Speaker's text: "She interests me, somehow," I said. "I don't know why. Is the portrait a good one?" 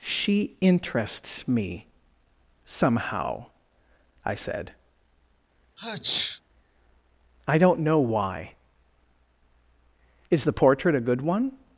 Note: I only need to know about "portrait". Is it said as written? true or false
true